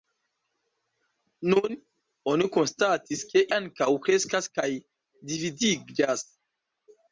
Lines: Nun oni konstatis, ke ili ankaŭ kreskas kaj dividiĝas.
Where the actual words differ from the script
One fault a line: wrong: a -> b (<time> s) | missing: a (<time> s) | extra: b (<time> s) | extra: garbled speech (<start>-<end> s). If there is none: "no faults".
missing: ili (3.4 s)